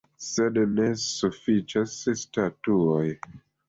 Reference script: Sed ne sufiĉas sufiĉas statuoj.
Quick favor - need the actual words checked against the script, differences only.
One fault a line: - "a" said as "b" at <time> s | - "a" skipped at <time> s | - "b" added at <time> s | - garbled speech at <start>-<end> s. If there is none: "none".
- "sufiĉas" skipped at 2.0 s